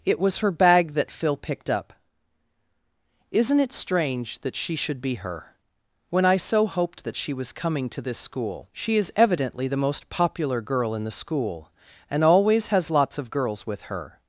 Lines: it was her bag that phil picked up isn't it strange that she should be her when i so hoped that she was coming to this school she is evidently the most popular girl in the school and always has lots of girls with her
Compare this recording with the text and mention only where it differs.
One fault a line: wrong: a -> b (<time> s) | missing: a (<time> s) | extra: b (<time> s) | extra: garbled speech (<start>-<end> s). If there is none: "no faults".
no faults